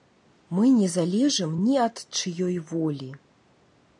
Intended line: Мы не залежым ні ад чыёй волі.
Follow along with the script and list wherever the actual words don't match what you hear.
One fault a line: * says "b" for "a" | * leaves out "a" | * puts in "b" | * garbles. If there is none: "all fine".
all fine